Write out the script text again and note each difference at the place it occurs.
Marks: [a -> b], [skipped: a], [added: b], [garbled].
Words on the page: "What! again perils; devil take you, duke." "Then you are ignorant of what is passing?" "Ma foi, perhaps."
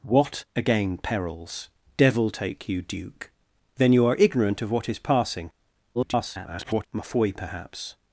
"What! again perils; devil take you, duke." "Then you are ignorant of what is passing?" [garbled] "Ma foi, perhaps."